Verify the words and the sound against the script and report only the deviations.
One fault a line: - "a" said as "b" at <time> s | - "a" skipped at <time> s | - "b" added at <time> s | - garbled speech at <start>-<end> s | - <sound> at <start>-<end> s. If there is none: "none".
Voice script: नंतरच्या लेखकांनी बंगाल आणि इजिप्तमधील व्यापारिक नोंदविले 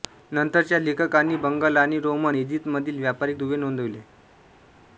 - "रोमन" added at 2.0 s
- "दुवे" added at 3.4 s